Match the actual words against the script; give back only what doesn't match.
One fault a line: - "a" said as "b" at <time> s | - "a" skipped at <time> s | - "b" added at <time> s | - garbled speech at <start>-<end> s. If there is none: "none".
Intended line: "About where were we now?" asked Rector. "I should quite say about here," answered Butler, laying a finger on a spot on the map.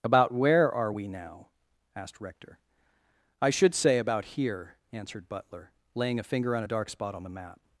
- "were" said as "are" at 0.7 s
- "quite" skipped at 3.7 s
- "dark" added at 6.7 s